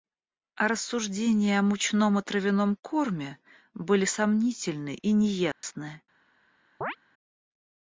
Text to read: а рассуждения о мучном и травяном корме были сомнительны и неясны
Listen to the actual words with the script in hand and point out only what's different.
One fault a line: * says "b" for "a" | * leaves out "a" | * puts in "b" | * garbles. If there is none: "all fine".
all fine